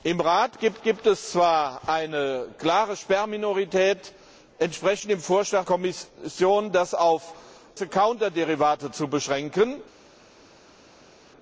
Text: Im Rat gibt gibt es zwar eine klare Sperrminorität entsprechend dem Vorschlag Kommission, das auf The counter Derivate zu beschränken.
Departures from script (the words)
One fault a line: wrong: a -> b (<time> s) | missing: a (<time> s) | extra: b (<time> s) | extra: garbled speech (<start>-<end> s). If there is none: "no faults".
no faults